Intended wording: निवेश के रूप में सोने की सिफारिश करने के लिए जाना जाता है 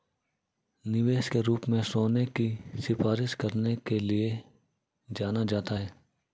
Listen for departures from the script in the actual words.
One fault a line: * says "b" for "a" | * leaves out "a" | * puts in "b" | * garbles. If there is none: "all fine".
all fine